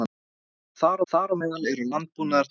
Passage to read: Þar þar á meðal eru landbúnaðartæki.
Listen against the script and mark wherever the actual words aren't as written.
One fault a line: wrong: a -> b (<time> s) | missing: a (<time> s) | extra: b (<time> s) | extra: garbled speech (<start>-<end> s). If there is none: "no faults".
no faults